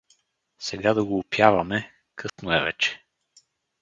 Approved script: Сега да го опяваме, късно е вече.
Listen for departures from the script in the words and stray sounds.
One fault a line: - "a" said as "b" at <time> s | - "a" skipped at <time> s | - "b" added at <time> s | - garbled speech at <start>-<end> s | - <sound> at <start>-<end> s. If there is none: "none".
- dropout at 2.3-2.4 s